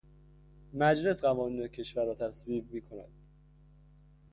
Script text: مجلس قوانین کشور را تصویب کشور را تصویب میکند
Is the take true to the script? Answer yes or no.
no